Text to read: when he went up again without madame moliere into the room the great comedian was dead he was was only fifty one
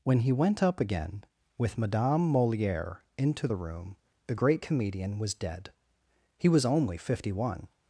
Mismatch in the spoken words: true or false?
true